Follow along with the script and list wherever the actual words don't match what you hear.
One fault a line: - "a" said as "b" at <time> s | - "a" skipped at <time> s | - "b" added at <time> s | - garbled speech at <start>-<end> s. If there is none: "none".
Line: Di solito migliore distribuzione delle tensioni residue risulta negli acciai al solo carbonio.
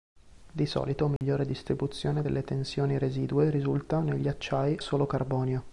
- "al" skipped at 4.8 s